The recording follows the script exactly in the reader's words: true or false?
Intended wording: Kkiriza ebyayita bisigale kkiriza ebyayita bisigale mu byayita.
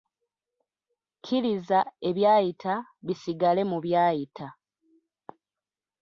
false